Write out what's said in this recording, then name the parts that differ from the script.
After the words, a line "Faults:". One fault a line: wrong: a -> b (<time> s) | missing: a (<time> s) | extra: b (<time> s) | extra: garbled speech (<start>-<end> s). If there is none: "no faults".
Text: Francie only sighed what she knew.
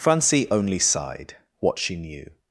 Francie only sighed what she knew.
Faults:
no faults